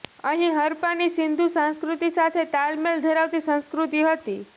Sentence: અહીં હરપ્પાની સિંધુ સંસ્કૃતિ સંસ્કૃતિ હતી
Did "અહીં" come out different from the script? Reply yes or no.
no